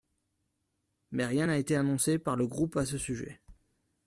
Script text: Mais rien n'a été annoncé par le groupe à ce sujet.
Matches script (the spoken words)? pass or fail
pass